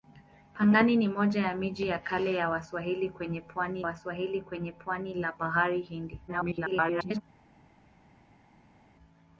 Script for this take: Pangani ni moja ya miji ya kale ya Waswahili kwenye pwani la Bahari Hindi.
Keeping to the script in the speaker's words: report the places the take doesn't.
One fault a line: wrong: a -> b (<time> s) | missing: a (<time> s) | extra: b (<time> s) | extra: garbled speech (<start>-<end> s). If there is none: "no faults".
extra: Waswahili kwenye pwani (3.8 s)
extra: garbled speech (6.3-7.2 s)